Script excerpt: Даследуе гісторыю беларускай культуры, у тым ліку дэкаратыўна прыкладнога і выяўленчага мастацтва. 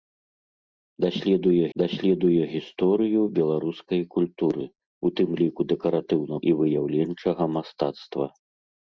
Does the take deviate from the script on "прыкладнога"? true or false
true